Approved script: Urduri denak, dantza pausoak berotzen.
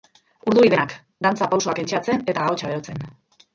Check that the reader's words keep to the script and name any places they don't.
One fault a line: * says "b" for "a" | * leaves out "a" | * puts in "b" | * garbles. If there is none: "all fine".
* puts in "entseatzen eta ahotsa"